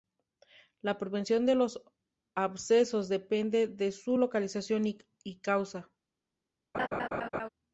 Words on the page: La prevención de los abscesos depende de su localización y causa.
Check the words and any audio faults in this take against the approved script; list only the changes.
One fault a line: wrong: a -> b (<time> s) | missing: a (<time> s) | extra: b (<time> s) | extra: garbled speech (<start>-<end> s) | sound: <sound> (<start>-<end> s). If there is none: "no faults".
sound: laugh (6.7-7.5 s)